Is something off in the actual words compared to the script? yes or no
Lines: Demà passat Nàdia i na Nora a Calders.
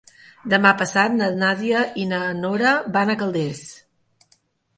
yes